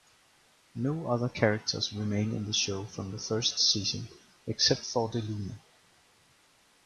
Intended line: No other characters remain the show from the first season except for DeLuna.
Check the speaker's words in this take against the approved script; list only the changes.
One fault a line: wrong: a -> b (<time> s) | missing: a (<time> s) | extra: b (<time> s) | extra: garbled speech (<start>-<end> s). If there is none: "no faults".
extra: in (2.4 s)